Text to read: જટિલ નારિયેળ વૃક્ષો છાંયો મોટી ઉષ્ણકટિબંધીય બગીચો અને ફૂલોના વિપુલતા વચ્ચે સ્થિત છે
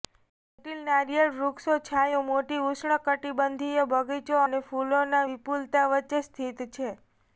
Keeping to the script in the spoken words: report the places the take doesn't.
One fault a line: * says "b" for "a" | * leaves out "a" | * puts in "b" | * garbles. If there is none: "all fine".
all fine